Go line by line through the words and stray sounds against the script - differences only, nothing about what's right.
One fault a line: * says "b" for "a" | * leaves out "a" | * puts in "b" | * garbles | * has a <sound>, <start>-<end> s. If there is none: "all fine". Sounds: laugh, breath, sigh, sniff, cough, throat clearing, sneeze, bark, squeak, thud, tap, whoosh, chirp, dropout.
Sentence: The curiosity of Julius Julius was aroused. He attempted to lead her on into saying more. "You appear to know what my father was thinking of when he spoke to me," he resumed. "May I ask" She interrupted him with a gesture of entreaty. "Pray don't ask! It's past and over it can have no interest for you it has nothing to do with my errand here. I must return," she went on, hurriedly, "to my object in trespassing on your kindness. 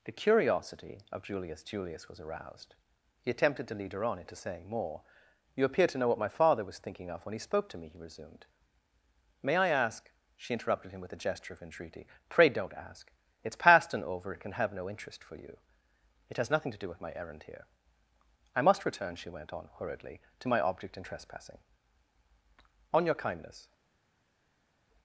all fine